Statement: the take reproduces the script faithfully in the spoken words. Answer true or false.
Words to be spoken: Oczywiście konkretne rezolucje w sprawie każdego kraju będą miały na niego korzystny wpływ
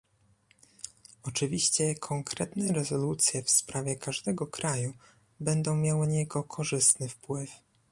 false